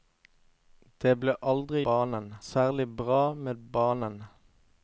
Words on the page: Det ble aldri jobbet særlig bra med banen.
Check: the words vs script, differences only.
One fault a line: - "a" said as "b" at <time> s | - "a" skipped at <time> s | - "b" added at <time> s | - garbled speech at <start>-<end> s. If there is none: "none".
- "jobbet" said as "banen" at 1.9 s